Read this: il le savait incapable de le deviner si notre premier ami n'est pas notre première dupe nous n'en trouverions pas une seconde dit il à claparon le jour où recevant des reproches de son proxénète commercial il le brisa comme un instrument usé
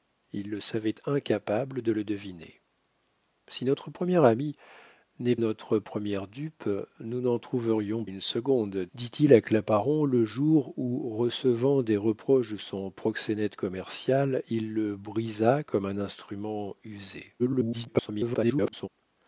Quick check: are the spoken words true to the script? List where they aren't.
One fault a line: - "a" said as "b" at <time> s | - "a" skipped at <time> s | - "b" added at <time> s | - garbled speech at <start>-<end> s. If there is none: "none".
- "pas" skipped at 5.3 s
- "pas" skipped at 8.1 s
- garbled speech at 17.4-18.9 s